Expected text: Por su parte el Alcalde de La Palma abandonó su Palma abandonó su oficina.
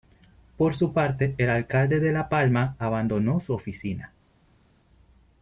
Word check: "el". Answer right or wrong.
right